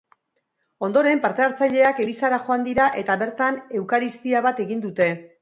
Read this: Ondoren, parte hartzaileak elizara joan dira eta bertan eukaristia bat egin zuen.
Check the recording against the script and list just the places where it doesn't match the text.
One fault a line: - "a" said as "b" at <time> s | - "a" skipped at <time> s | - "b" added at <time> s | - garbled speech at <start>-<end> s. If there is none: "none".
- "zuen" said as "dute" at 4.9 s